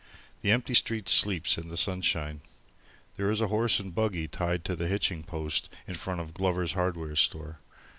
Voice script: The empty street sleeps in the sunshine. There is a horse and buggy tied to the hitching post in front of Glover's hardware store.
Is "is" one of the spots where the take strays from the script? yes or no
no